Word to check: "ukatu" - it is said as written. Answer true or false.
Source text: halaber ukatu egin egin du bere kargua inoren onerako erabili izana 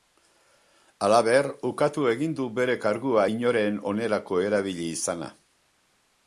true